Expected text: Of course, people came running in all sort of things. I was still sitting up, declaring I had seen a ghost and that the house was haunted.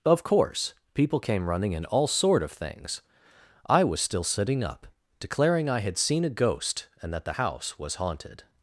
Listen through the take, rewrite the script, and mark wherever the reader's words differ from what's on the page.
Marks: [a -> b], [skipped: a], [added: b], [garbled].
Of course, people came running in all sort of things. I was still sitting up, declaring I had seen a ghost and that the house was haunted.